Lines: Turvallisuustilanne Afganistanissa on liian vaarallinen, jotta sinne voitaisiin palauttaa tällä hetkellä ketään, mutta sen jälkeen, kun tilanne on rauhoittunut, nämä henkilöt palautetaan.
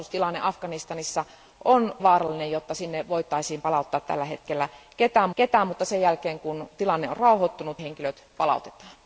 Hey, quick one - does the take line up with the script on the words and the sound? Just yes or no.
no